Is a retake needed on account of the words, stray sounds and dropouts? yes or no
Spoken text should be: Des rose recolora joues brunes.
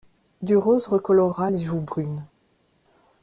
yes